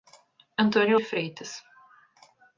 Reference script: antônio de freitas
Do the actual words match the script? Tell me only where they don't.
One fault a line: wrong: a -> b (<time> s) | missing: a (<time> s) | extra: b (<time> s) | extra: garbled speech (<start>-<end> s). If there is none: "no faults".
no faults